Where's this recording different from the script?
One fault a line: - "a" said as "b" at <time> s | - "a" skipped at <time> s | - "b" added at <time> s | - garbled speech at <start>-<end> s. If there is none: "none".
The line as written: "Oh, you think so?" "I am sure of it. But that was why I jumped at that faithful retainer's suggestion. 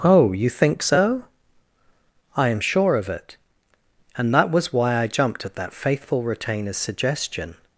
- "But" said as "And" at 4.2 s